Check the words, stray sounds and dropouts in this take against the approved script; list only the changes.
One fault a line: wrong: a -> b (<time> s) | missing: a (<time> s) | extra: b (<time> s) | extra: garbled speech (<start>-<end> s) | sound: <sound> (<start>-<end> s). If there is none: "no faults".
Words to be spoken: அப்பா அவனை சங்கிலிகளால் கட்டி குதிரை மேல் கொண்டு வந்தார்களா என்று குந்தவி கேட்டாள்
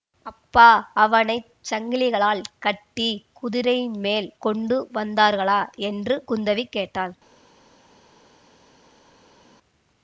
no faults